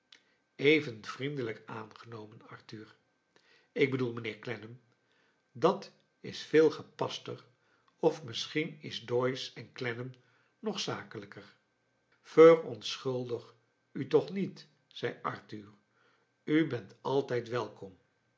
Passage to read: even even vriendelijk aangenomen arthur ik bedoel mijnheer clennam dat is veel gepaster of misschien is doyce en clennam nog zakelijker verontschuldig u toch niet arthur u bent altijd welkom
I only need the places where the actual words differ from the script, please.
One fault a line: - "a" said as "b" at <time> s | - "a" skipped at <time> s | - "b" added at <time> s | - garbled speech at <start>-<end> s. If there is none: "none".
- "even" skipped at 1.1 s
- "zei" added at 14.9 s